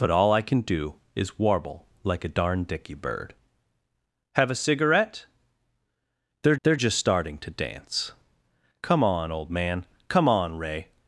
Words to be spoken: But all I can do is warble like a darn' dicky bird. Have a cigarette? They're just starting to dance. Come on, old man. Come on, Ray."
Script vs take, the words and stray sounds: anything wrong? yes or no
yes